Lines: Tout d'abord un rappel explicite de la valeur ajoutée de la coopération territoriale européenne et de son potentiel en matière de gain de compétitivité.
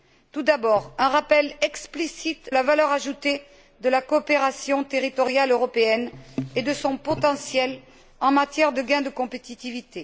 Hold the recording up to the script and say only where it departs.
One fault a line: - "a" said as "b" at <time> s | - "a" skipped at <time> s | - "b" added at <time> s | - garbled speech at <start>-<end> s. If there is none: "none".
- "de" skipped at 2.5 s